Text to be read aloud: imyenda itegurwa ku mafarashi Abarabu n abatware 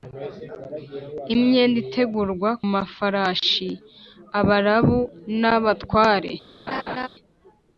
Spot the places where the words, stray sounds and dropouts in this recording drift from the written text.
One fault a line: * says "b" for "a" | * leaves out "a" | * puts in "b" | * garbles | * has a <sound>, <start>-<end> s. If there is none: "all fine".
* leaves out "ku"
* has a laugh, 6.7-7.1 s